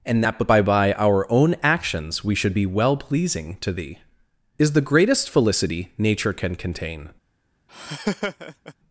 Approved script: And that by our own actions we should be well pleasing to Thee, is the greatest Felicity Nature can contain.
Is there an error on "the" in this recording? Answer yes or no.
no